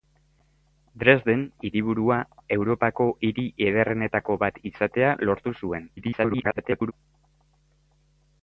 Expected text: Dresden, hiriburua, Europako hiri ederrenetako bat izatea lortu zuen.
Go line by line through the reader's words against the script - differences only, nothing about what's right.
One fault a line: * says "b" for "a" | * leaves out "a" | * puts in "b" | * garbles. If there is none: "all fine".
* garbles